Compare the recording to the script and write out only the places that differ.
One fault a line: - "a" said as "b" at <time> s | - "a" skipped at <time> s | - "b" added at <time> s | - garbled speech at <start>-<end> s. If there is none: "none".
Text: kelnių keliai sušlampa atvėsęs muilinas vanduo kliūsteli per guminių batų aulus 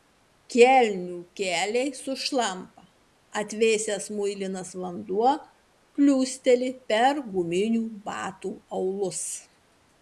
none